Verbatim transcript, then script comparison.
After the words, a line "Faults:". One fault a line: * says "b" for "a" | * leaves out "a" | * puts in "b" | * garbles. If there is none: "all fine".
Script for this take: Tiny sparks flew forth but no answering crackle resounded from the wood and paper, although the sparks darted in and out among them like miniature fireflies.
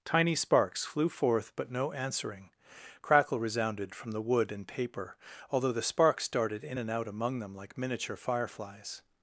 Tiny sparks flew forth but no answering crackle resounded from the wood and paper, although the sparks darted in and out among them like miniature fireflies.
Faults:
all fine